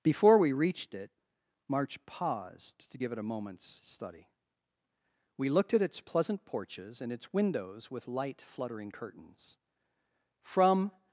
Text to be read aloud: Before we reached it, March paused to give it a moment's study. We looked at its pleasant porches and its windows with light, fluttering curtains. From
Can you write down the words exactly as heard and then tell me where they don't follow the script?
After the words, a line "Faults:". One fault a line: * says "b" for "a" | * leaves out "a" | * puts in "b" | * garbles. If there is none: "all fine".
Before we reached it, March paused to give it a moment's study. We looked at its pleasant porches and its windows with light, fluttering curtains. From
Faults:
all fine